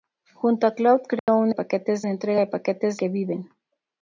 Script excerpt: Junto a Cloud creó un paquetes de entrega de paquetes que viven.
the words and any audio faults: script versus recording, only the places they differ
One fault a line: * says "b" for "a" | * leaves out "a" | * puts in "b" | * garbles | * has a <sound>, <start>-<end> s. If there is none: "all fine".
* has a dropout, 1.2-1.3 s